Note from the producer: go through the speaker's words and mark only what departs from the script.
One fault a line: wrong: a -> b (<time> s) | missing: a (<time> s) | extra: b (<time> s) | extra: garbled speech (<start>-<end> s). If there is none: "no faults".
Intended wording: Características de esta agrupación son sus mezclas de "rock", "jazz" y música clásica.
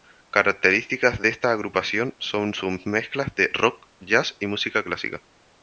no faults